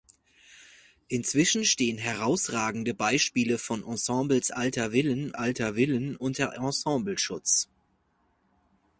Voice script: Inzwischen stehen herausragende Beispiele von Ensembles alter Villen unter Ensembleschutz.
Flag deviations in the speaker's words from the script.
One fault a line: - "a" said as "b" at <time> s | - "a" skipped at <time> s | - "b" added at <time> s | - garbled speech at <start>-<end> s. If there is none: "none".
- "alter Villen" added at 5.3 s